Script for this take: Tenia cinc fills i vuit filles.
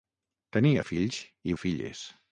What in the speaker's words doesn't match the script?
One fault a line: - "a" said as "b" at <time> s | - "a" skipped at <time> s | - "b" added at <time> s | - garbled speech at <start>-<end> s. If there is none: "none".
- "cinc" skipped at 0.8 s
- "vuit" skipped at 1.5 s